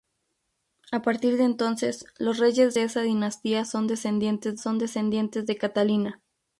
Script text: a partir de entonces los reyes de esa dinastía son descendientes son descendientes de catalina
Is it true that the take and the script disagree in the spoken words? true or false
false